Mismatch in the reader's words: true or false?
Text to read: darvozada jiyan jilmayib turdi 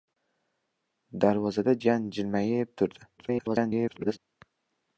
true